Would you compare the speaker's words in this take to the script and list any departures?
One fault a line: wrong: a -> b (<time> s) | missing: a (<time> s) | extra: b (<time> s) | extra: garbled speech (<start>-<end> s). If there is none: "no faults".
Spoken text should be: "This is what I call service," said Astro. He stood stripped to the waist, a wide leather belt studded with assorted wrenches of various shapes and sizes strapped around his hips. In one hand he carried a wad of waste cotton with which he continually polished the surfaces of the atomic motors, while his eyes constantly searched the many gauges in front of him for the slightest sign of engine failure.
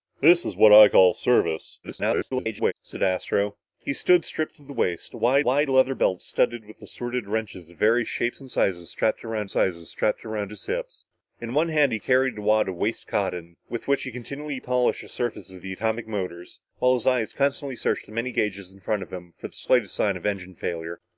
extra: garbled speech (1.8-2.7 s)
extra: wide (5.4 s)
extra: sizes strapped around (9.5 s)